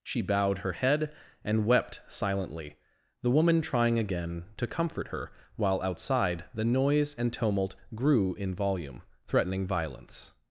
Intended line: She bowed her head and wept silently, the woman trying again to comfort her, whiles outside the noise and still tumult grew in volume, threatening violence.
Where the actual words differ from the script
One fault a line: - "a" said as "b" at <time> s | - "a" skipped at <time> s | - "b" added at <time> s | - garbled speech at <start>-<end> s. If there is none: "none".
- "whiles" said as "while" at 5.5 s
- "still" skipped at 7.3 s